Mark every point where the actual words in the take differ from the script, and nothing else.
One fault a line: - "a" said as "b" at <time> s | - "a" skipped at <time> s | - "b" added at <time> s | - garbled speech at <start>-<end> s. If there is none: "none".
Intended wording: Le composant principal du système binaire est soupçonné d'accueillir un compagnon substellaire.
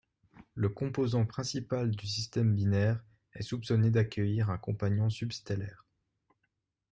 none